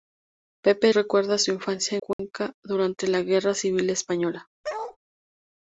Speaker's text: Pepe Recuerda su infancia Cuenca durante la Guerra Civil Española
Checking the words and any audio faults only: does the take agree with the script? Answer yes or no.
no